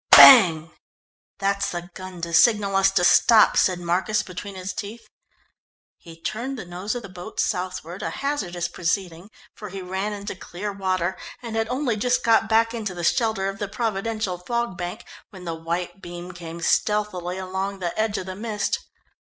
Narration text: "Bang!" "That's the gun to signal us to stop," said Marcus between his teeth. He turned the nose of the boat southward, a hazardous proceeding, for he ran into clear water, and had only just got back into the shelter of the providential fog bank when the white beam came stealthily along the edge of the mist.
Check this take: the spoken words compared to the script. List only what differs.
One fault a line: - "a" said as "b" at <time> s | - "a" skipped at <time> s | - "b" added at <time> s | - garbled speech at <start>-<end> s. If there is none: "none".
none